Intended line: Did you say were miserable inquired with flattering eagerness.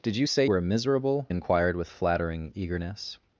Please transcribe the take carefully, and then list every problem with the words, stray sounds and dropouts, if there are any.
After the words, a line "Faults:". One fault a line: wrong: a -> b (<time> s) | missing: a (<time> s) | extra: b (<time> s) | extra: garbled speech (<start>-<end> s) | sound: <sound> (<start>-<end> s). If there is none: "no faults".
Did you say were miserable inquired with flattering eagerness.
Faults:
no faults